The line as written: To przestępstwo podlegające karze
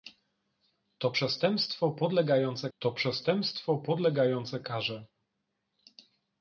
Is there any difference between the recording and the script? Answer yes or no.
yes